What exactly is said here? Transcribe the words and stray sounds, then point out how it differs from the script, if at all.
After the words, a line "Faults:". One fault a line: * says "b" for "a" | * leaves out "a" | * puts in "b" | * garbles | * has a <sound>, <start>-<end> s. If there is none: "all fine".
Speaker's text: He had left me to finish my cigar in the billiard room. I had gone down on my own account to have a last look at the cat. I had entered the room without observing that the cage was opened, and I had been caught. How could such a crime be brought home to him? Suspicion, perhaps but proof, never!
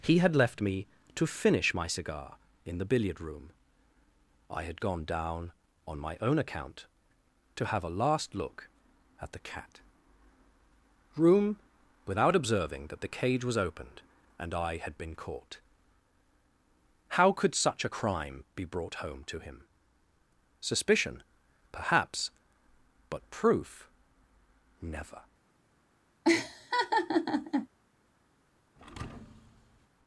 He had left me to finish my cigar in the billiard room. I had gone down on my own account to have a last look at the cat. room without observing that the cage was opened, and I had been caught. How could such a crime be brought home to him? Suspicion, perhaps but proof, never!
Faults:
* leaves out "I had entered the"
* has a laugh, 26.2-27.7 s
* has a thud, 28.8-29.9 s